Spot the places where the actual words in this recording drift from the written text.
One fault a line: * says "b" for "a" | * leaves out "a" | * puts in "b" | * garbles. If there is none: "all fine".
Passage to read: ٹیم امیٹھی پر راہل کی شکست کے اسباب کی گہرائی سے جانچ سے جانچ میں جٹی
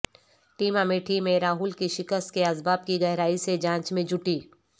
* says "میں" for "پر"
* leaves out "سے جانچ"